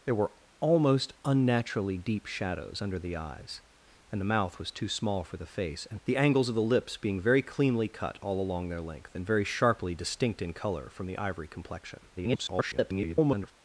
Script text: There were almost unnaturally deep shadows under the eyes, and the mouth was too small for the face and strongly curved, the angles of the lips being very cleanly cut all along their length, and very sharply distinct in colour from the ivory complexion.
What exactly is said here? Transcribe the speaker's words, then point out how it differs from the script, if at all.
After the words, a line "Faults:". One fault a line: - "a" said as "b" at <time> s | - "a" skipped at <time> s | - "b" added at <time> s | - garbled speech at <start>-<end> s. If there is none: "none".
There were almost unnaturally deep shadows under the eyes, and the mouth was too small for the face and the angles of the lips being very cleanly cut all along their length, and very sharply distinct in colour from the ivory complexion. [garbled]
Faults:
- "strongly curved" skipped at 6.0 s
- garbled speech at 12.2-13.5 s